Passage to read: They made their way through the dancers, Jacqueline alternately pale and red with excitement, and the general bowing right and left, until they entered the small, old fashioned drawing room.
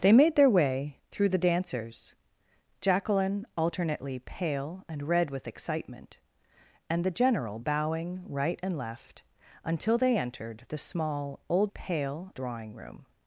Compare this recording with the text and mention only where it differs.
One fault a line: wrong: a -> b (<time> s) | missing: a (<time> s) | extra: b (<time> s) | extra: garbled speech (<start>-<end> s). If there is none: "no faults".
wrong: fashioned -> pale (11.7 s)